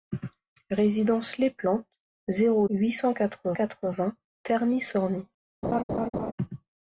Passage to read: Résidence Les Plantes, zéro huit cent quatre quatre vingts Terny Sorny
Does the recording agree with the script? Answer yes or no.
yes